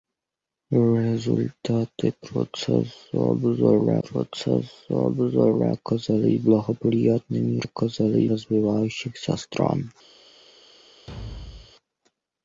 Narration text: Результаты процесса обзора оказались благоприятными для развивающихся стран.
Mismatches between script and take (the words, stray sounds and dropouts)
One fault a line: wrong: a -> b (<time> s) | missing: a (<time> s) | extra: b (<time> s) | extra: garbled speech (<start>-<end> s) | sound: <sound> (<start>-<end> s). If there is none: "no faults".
extra: процесса обзора (4.0 s)
wrong: для -> оказались (7.6 s)
sound: thud (11.1-11.7 s)